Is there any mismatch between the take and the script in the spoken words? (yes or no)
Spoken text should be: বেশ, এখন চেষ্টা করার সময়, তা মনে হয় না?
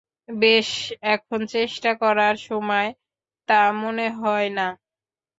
no